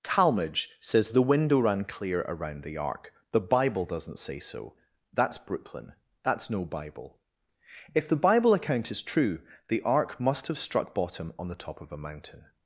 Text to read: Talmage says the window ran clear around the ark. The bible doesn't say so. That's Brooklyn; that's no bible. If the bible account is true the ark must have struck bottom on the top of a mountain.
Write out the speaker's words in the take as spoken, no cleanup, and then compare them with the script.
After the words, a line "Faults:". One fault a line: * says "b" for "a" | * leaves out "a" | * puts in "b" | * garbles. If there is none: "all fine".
Talmage says the window ran clear around the ark. The bible doesn't say so. That's Brooklyn; that's no bible. If the bible account is true the ark must have struck bottom on the top of a mountain.
Faults:
all fine